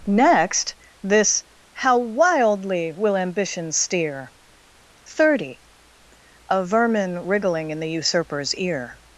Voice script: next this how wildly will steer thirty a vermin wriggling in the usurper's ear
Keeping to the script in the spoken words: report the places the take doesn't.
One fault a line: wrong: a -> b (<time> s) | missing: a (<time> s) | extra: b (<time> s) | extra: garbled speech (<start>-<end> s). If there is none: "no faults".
extra: ambition (3.1 s)